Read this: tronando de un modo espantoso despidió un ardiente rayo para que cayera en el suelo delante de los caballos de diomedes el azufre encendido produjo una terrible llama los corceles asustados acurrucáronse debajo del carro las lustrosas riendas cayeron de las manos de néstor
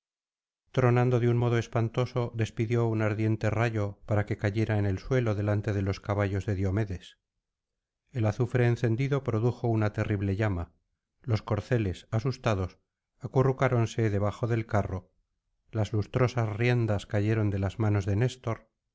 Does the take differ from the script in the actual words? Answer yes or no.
no